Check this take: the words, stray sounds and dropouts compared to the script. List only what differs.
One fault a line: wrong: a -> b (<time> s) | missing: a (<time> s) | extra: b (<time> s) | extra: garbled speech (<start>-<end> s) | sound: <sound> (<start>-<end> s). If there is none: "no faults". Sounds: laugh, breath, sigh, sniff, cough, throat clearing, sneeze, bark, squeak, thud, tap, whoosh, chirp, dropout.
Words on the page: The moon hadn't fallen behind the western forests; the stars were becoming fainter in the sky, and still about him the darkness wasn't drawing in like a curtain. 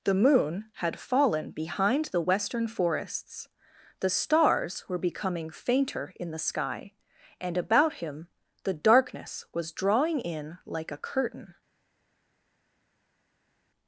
wrong: hadn't -> had (0.8 s)
missing: still (7.6 s)
wrong: wasn't -> was (9.5 s)